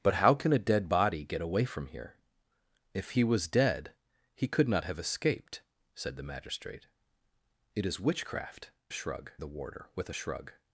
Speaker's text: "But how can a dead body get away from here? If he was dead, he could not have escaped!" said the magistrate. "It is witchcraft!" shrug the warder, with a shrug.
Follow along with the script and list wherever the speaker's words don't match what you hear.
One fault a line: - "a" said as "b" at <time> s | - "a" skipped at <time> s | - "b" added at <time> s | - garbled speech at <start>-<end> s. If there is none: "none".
none